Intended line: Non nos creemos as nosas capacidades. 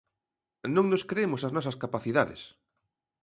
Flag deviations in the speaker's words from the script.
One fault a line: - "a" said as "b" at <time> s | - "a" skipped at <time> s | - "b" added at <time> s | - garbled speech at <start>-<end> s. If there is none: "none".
none